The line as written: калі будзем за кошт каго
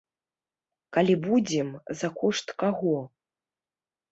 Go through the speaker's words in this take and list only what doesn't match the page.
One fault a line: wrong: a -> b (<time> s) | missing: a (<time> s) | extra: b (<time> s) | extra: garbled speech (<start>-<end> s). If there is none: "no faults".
no faults